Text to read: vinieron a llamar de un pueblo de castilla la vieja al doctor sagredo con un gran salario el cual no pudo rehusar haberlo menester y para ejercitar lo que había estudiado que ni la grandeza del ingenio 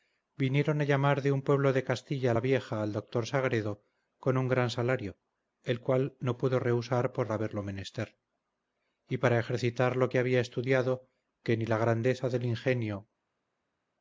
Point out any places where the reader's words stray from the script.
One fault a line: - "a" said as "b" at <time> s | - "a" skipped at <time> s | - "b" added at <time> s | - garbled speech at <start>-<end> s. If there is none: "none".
- "por" added at 7.1 s